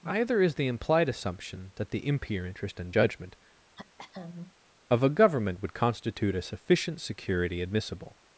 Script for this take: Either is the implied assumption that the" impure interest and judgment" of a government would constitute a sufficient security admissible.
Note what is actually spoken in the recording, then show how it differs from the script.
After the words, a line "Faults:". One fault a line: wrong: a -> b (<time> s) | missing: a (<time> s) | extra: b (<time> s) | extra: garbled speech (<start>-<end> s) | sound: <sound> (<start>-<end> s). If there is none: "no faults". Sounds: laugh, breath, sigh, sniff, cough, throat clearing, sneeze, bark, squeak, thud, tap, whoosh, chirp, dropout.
Either is the implied assumption that the" impure interest and judgment" of a government would constitute a sufficient security admissible.
Faults:
sound: throat clearing (3.7-4.5 s)